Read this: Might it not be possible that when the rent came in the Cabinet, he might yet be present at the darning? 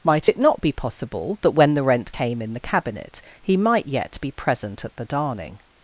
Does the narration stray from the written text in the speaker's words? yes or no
no